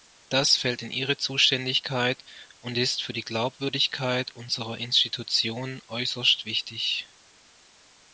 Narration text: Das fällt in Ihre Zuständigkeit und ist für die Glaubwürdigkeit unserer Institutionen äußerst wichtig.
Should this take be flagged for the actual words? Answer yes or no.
no